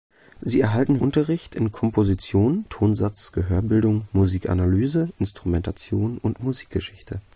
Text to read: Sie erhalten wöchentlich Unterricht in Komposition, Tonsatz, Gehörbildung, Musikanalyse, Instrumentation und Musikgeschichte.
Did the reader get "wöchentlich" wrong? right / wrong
wrong